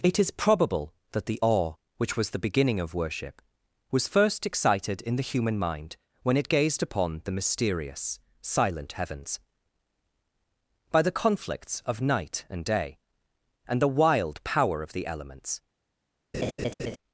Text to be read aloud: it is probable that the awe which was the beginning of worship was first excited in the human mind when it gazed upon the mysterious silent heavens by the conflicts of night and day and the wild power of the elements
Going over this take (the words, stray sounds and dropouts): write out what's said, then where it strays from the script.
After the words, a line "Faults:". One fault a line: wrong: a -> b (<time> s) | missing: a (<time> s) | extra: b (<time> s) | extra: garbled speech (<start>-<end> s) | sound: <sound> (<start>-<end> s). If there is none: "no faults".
it is probable that the awe which was the beginning of worship was first excited in the human mind when it gazed upon the mysterious silent heavens by the conflicts of night and day and the wild power of the elements
Faults:
sound: laugh (16.3-17.0 s)